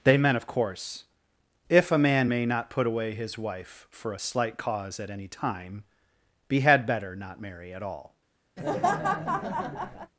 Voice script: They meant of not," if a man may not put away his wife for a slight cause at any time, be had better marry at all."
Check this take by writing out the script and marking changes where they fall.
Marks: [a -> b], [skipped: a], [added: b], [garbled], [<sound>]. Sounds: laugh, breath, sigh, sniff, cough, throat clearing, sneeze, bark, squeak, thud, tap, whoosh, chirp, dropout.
They meant of [not," -> course] if a man may not put away his wife for a slight cause at any time, be had better [added: not] marry at all." [laugh]